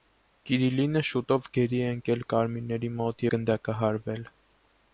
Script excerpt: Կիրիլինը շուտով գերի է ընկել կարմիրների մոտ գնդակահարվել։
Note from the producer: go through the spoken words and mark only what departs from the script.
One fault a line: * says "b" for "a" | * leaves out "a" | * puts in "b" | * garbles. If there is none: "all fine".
all fine